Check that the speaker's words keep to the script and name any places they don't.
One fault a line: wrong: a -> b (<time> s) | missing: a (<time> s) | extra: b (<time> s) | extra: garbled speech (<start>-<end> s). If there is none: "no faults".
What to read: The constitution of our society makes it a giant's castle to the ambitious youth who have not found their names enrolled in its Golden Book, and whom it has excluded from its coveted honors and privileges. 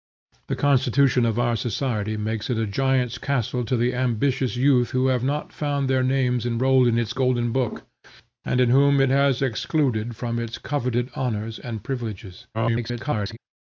extra: garbled speech (12.5-13.4 s)